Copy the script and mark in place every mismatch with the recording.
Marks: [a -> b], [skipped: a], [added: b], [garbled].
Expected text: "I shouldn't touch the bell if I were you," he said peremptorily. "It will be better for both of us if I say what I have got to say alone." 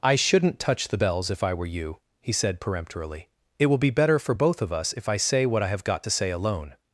"I shouldn't touch the [bell -> bells] if I were you," he said peremptorily. "It will be better for both of us if I say what I have got to say alone."